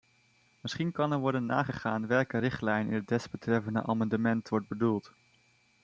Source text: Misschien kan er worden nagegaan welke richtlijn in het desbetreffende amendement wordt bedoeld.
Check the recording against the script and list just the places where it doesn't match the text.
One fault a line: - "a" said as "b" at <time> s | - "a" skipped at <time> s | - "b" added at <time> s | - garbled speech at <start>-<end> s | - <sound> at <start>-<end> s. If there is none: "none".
none